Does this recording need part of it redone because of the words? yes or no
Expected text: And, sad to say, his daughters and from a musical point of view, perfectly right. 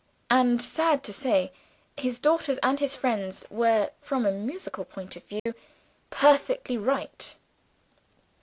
yes